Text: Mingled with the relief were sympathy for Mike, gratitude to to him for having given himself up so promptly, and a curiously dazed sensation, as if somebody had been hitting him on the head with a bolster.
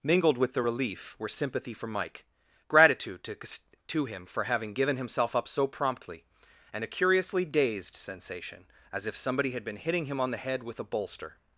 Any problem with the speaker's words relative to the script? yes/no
no